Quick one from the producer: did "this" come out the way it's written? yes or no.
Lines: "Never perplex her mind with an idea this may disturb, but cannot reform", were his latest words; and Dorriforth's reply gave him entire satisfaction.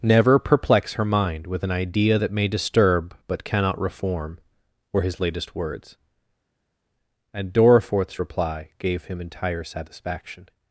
no